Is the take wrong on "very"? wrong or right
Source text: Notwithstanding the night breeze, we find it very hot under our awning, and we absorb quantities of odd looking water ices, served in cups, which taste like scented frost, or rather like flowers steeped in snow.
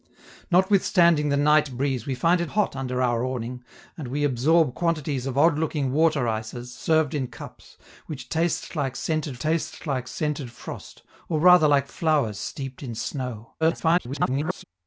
wrong